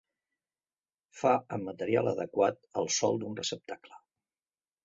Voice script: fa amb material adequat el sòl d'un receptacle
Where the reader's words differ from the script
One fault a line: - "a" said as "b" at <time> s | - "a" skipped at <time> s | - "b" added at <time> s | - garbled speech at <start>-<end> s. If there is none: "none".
none